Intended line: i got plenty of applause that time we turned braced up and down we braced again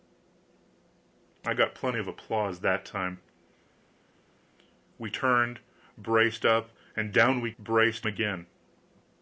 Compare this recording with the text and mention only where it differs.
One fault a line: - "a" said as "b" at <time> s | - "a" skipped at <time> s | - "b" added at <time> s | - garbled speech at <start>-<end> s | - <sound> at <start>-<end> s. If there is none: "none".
none